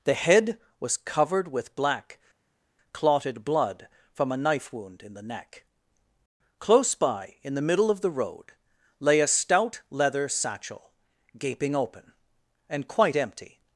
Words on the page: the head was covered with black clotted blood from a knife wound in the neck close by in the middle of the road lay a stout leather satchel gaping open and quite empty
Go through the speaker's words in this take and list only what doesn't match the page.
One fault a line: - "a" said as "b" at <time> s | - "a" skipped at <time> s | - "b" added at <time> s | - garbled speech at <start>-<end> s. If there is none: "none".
none